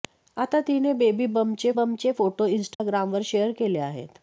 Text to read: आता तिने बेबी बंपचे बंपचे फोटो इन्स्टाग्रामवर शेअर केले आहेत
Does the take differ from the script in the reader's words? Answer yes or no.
no